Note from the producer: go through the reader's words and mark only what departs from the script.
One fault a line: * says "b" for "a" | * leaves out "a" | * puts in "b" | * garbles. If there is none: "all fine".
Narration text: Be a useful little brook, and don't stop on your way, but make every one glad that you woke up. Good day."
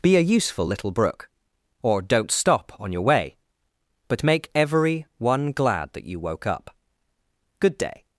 * says "or" for "and"